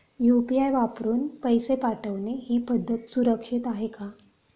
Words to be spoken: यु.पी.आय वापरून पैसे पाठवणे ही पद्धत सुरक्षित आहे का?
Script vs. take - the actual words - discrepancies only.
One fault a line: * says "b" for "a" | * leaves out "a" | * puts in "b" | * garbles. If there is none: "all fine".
all fine